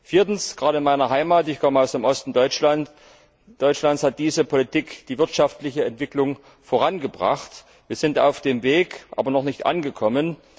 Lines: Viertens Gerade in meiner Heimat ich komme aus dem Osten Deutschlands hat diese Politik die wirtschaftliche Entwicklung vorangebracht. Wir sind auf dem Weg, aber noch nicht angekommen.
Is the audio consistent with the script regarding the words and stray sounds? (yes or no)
yes